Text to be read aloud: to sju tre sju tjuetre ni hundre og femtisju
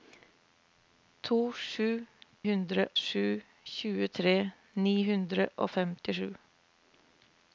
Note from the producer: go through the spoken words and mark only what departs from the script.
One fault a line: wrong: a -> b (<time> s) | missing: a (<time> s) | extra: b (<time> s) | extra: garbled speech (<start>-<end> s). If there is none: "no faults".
wrong: tre -> hundre (2.5 s)